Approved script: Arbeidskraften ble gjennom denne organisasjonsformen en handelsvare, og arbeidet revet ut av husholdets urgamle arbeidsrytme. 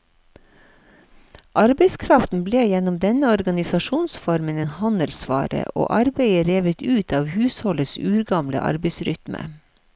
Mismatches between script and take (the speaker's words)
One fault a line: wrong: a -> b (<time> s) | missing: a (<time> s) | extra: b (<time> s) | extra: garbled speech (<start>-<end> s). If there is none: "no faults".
no faults